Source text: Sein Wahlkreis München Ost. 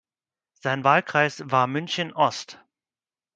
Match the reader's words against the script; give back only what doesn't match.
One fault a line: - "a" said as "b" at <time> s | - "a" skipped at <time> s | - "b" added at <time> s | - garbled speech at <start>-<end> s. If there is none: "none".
- "war" added at 1.4 s